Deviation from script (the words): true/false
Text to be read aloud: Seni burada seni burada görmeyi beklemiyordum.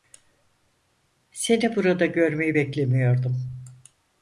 true